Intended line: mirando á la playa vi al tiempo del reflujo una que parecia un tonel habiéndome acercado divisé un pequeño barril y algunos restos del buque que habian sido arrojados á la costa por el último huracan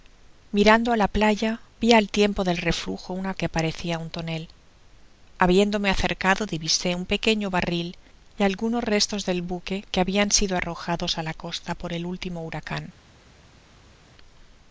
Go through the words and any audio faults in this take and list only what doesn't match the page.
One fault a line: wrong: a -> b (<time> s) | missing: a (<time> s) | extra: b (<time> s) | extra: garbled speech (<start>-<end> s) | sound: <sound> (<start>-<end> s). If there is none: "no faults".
no faults